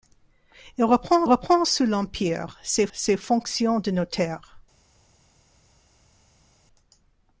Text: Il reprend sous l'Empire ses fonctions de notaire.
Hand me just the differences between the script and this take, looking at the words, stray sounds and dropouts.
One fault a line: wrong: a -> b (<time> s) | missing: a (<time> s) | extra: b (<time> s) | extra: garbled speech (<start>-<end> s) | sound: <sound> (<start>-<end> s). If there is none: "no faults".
extra: reprend (1.2 s)
extra: ses (2.9 s)